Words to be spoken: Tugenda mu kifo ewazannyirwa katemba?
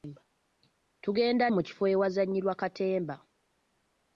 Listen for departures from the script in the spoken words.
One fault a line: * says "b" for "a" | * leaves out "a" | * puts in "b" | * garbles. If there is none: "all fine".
all fine